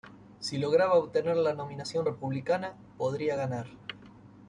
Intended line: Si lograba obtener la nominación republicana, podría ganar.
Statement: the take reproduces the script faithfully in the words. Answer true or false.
true